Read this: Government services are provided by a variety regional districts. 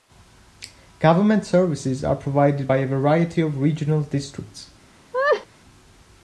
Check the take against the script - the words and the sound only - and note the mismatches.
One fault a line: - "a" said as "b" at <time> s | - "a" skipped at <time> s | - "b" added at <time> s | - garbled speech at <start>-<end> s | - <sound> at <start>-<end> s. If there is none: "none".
- "of" added at 3.4 s
- laugh at 5.1-5.5 s